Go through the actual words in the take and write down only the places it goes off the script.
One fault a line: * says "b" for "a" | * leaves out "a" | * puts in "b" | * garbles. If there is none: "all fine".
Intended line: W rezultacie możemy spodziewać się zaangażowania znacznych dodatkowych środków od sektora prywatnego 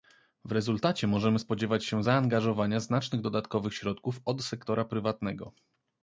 all fine